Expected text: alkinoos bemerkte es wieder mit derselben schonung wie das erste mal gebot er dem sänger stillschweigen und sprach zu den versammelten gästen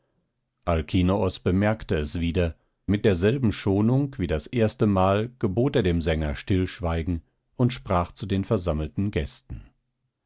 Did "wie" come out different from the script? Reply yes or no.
no